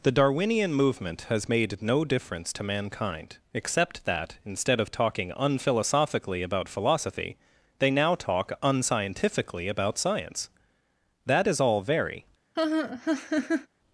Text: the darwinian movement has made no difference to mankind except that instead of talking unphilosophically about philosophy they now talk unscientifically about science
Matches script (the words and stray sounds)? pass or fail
fail